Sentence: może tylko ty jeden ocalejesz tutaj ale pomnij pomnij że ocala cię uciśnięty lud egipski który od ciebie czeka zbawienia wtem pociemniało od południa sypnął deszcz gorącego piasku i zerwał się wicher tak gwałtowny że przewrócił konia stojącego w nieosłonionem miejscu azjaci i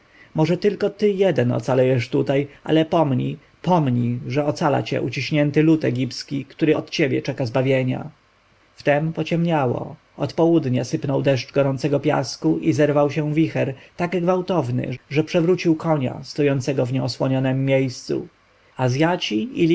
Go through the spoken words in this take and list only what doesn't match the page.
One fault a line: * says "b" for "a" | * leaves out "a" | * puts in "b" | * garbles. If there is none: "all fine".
all fine